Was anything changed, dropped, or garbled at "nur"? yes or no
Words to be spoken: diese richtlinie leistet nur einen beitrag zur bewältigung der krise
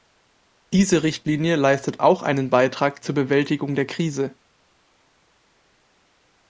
yes